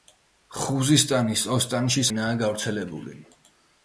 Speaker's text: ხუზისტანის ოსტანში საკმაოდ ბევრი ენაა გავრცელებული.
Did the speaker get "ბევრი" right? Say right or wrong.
wrong